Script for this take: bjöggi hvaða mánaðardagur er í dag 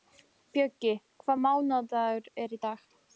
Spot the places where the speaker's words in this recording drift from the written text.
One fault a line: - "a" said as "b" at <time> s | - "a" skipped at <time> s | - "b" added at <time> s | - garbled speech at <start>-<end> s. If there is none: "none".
none